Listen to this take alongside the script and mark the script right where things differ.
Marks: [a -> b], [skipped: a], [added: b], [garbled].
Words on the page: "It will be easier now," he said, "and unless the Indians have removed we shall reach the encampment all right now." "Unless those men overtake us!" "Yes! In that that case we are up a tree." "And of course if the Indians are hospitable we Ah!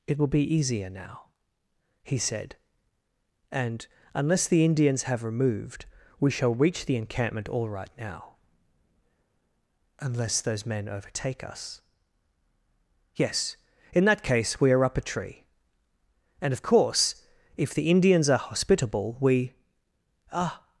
"It will be easier now," he said, "and unless the Indians have removed we shall reach the encampment all right now." "Unless those men overtake us!" "Yes! In that [skipped: that] case we are up a tree." "And of course if the Indians are hospitable we Ah!